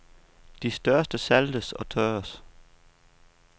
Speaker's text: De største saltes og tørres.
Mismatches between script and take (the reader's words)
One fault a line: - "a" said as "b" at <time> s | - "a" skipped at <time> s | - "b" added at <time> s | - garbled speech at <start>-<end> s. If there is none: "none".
none